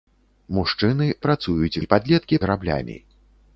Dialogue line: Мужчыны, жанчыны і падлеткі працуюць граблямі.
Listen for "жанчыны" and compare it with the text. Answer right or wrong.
wrong